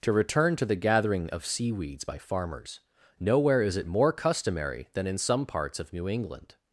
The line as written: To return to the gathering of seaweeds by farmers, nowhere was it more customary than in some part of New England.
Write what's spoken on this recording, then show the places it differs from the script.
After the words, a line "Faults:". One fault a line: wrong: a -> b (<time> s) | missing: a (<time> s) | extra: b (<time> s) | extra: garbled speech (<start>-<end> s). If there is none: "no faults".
To return to the gathering of seaweeds by farmers, nowhere is it more customary than in some parts of New England.
Faults:
wrong: was -> is (3.6 s)
wrong: part -> parts (5.4 s)